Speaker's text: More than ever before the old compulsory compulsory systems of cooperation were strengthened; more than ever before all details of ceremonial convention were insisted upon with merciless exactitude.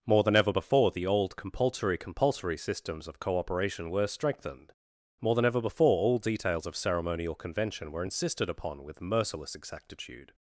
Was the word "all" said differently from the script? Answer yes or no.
no